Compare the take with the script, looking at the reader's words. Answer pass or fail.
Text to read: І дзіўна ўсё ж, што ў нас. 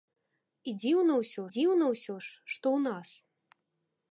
fail